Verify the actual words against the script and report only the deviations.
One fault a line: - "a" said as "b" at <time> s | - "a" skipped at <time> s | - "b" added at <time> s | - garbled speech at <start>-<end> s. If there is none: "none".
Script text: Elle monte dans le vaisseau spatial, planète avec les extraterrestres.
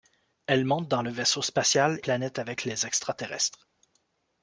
none